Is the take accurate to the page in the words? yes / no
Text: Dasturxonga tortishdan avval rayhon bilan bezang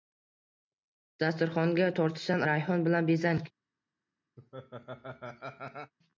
no